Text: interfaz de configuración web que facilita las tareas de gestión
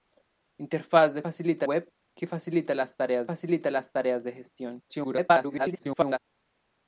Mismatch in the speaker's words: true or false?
true